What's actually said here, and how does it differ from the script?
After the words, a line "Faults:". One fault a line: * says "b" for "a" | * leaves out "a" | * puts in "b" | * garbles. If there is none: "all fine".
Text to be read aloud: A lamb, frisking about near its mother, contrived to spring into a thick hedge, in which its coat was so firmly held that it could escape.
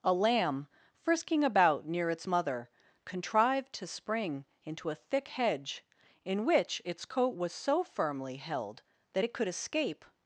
A lamb, frisking about near its mother, contrived to spring into a thick hedge, in which its coat was so firmly held that it could escape.
Faults:
all fine